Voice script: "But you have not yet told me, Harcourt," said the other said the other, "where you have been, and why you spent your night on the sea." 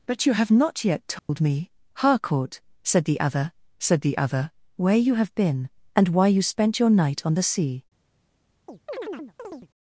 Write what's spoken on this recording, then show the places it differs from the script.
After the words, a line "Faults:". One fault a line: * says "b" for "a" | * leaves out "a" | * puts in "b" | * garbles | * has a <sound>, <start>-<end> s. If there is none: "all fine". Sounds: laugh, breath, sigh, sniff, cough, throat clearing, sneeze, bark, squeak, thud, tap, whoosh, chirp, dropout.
"But you have not yet told me, Harcourt," said the other said the other, "where you have been, and why you spent your night on the sea."
Faults:
* has a dropout, 1.2-1.3 s
* has a chirp, 8.7-9.7 s